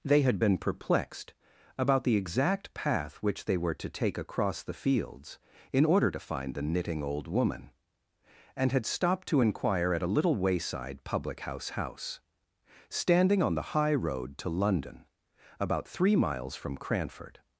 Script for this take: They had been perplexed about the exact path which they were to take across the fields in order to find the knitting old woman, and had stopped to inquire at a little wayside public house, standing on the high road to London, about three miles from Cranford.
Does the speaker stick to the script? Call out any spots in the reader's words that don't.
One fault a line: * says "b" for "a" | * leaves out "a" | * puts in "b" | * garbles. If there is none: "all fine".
* puts in "house"